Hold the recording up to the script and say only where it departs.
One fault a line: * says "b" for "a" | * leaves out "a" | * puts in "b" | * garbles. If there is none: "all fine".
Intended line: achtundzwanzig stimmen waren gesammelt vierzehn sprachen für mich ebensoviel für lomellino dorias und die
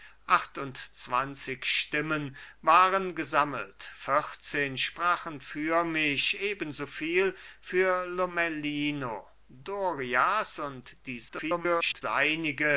* garbles